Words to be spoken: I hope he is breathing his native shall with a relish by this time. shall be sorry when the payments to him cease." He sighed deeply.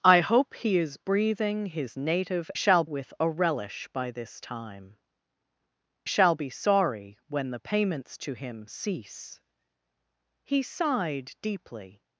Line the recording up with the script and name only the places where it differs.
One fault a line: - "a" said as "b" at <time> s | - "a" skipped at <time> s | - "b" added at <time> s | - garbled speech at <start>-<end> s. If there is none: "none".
none